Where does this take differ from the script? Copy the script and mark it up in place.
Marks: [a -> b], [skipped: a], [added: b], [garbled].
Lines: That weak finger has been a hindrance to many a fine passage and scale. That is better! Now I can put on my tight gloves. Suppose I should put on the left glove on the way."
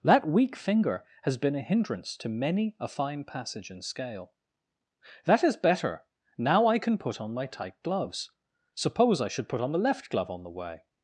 That weak finger has been a hindrance to many a fine passage and scale. That is better! Now I can put on my tight gloves. Suppose I should put on the left glove on the way."